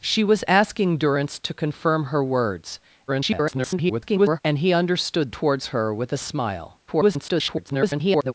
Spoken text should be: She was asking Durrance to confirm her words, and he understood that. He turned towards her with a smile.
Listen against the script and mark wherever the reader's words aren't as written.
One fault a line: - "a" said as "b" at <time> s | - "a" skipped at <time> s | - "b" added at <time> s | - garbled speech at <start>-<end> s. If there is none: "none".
- garbled speech at 3.1-4.4 s
- "that He turned" skipped at 5.3 s
- garbled speech at 6.9-8.3 s